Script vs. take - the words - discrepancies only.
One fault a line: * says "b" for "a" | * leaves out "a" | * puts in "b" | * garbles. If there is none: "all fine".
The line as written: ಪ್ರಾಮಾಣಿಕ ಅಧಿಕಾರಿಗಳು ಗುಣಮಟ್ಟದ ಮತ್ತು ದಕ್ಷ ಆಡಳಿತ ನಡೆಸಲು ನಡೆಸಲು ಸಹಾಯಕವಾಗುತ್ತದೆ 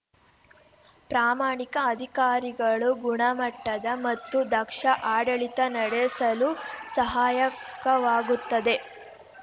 * leaves out "ನಡೆಸಲು"